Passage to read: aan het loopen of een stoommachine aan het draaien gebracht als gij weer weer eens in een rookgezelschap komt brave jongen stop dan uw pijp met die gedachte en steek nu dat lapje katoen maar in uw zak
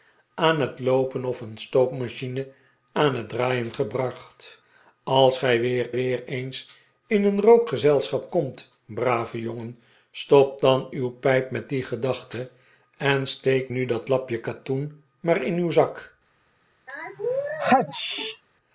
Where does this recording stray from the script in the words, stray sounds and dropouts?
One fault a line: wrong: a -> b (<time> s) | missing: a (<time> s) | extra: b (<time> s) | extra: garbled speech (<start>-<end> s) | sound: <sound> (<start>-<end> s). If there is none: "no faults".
sound: sneeze (16.9-18.4 s)